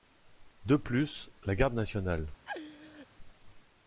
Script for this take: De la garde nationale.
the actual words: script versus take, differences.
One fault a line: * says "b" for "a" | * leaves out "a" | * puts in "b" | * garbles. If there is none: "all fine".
* puts in "plus"